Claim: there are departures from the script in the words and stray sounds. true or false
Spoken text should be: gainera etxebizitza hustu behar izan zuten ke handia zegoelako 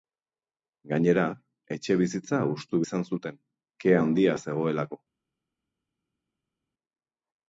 true